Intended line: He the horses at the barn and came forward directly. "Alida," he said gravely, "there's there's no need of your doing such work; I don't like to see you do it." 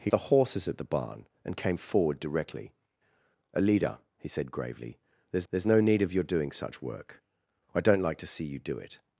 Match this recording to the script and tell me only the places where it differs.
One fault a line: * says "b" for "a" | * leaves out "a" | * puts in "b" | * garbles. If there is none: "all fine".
all fine